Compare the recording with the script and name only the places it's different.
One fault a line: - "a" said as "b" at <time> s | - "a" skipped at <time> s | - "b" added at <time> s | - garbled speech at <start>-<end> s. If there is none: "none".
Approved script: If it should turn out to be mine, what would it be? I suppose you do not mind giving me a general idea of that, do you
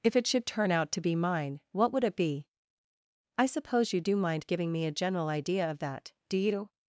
- "not" skipped at 4.2 s